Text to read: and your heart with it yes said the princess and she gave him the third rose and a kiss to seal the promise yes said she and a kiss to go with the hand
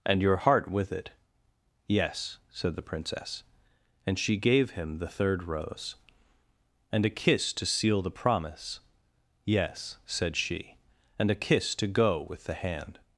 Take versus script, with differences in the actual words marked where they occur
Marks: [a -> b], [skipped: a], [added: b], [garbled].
and your heart with it yes said the princess and she gave him the third rose and a kiss to seal the promise yes said she and a kiss to go with the hand